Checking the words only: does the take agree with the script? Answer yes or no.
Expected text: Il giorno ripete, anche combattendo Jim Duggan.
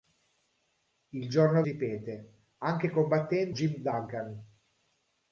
yes